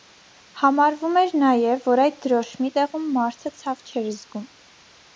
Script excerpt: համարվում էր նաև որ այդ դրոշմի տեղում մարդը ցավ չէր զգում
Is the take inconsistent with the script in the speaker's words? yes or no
no